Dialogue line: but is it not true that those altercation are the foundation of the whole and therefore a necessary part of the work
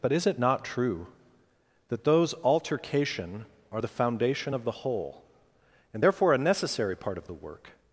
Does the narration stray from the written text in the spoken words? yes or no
no